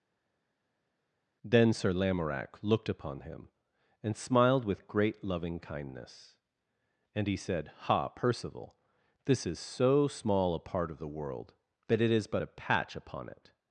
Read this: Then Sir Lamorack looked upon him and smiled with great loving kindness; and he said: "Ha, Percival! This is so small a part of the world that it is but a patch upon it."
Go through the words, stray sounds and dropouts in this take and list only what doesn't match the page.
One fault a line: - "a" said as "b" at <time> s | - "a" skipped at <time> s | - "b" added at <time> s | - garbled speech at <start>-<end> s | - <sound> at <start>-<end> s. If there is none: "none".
none